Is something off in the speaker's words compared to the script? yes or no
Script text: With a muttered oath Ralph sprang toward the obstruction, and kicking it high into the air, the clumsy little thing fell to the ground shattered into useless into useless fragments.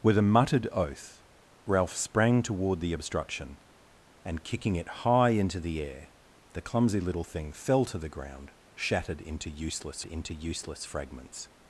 no